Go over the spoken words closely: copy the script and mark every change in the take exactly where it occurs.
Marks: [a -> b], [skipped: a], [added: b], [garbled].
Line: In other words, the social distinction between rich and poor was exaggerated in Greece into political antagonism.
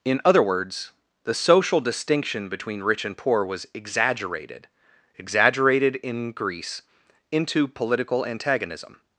In other words, the social distinction between rich and poor was exaggerated [added: exaggerated] in Greece into political antagonism.